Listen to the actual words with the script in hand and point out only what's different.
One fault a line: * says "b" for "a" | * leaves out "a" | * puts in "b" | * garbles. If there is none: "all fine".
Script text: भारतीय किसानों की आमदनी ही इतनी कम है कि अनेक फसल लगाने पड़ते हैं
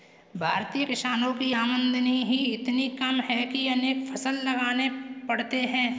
all fine